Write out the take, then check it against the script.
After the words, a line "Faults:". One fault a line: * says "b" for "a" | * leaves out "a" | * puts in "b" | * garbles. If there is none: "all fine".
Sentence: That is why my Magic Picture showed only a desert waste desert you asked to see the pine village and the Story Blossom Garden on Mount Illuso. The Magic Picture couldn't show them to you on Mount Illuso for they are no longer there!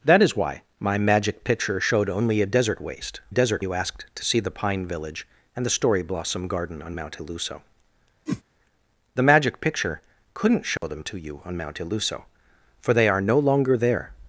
That is why my Magic Picture showed only a desert waste desert you asked to see the pine village and the Story Blossom Garden on Mount Illuso. The Magic Picture couldn't show them to you on Mount Illuso for they are no longer there!
Faults:
all fine